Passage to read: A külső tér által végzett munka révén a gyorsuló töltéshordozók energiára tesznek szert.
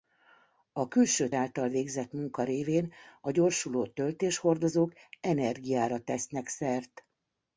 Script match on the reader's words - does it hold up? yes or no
no